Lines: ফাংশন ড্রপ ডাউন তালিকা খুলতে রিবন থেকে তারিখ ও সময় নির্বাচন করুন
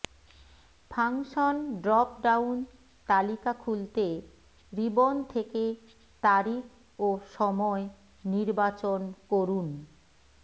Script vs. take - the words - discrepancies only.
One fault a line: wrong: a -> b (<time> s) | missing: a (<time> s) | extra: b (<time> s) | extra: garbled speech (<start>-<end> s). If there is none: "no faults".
no faults